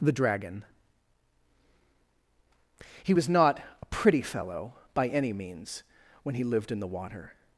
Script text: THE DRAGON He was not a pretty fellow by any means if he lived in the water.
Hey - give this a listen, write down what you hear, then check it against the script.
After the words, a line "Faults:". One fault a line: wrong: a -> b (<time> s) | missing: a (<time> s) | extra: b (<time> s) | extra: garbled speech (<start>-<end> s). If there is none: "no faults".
THE DRAGON He was not a pretty fellow by any means when he lived in the water.
Faults:
wrong: if -> when (6.2 s)